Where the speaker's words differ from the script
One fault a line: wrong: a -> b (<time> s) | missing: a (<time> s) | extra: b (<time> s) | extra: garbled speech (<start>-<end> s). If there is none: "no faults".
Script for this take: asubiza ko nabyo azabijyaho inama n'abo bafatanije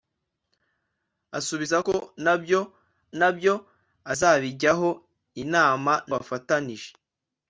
extra: nabyo (3.2 s)
missing: n'abo (5.9 s)